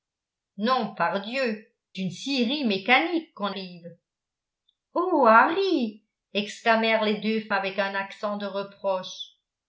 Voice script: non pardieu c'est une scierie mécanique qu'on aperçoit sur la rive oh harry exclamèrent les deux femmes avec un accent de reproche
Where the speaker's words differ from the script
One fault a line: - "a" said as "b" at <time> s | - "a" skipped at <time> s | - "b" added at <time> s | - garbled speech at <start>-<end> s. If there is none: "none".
- "c'est" skipped at 1.7 s
- "aperçoit sur la" skipped at 3.5 s
- "femmes" skipped at 7.5 s